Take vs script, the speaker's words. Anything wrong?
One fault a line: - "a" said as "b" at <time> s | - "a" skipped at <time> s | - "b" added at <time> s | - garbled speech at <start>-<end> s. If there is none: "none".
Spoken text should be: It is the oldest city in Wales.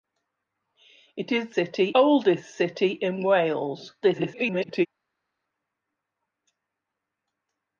- "the" said as "city" at 1.5 s
- garbled speech at 4.0-4.9 s